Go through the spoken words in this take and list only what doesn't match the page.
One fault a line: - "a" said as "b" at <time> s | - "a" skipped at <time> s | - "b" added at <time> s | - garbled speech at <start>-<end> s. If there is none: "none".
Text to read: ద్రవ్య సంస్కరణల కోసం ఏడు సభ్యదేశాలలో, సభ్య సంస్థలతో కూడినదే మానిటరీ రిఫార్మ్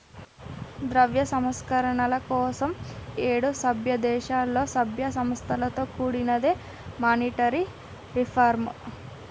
none